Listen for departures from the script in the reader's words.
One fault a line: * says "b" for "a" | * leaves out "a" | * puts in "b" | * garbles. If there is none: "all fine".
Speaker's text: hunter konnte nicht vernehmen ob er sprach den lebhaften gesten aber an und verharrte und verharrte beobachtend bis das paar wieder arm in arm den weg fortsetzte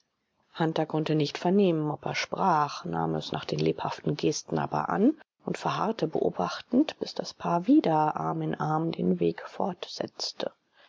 * puts in "nahm es nach"
* leaves out "und verharrte"